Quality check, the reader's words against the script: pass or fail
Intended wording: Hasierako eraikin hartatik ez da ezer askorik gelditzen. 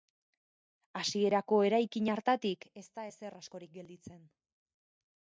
pass